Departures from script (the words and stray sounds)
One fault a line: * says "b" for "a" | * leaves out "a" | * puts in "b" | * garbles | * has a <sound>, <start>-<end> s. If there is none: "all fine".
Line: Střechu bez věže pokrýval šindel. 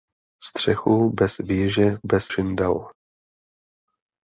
* says "bez" for "pokrýval"